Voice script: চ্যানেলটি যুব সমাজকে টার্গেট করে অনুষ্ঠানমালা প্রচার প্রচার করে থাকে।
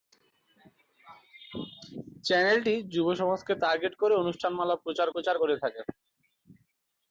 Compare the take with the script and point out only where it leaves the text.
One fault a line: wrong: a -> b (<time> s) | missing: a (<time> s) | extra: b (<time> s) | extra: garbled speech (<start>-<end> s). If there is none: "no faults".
no faults